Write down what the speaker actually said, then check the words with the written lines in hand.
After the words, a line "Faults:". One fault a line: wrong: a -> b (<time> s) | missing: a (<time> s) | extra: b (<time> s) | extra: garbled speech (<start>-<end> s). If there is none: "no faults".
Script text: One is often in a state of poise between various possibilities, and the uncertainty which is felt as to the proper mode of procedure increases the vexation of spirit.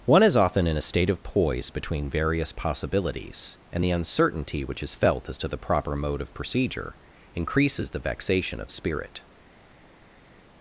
One is often in a state of poise between various possibilities, and the uncertainty which is felt as to the proper mode of procedure increases the vexation of spirit.
Faults:
no faults